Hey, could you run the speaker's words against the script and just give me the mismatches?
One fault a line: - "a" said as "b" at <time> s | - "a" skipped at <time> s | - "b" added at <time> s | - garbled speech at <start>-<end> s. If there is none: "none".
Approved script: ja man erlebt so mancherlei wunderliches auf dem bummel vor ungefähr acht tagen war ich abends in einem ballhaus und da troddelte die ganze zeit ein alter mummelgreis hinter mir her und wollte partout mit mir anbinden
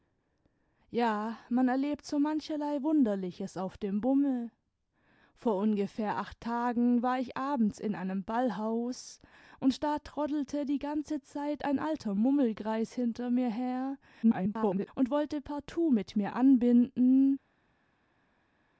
- garbled speech at 14.2-14.9 s